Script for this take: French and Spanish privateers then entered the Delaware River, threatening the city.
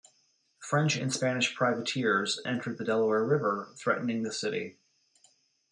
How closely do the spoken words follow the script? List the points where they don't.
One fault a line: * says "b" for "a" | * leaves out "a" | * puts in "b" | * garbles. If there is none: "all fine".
* leaves out "then"